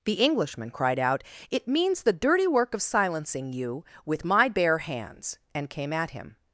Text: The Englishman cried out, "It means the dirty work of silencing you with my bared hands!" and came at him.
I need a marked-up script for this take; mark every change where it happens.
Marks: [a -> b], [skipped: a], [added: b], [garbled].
The Englishman cried out, "It means the dirty work of silencing you with my [bared -> bare] hands!" and came at him.